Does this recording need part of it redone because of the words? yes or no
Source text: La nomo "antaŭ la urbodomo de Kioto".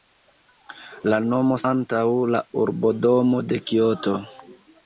no